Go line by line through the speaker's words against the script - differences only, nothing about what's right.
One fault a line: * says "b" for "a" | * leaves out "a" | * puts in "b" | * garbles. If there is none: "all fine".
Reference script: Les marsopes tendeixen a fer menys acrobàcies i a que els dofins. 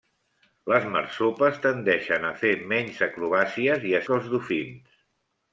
all fine